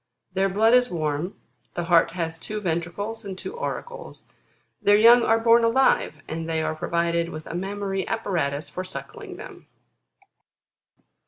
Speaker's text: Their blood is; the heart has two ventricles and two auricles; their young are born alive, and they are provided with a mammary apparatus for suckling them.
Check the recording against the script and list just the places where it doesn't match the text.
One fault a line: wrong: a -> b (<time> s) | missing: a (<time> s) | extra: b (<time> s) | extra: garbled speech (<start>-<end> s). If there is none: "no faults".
extra: warm (0.9 s)